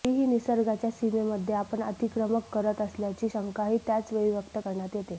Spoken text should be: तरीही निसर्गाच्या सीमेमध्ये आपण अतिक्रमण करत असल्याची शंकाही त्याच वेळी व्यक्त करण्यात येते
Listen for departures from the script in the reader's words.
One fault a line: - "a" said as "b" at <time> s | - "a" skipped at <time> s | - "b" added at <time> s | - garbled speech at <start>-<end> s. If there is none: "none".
none